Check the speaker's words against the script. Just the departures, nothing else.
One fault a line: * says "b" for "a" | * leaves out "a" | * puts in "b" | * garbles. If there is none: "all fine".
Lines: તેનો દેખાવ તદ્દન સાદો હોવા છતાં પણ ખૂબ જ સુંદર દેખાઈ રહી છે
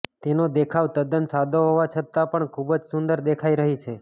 all fine